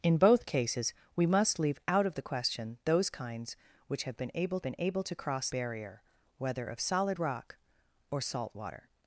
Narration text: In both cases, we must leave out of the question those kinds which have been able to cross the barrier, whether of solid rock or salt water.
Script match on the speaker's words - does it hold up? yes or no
no